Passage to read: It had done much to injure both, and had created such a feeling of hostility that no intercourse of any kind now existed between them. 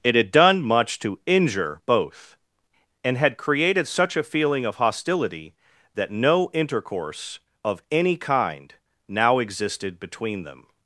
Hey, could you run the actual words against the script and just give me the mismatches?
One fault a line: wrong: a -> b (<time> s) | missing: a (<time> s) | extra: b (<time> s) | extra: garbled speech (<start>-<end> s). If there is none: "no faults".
no faults